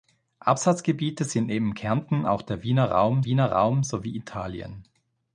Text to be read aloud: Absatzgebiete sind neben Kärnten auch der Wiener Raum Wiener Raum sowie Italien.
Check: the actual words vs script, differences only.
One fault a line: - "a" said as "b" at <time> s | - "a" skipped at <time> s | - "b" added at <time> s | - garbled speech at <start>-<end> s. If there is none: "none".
none